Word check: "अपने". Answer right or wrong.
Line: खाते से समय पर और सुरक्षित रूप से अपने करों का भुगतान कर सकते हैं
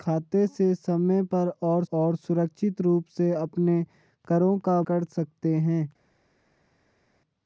right